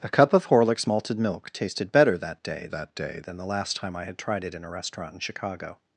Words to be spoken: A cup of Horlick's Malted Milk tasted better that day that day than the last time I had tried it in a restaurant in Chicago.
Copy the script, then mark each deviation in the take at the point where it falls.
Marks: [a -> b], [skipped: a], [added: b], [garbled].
A cup of Horlick's Malted Milk tasted better that day that day than the last time I had tried it in a restaurant in Chicago.